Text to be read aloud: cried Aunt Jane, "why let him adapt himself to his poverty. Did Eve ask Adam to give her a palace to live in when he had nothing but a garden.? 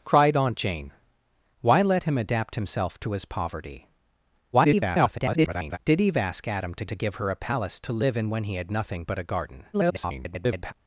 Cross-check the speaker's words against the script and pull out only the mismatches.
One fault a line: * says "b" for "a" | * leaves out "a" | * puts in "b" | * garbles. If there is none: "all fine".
* garbles
* puts in "to"
* garbles